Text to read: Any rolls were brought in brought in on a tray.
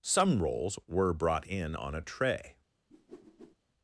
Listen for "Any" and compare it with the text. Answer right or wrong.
wrong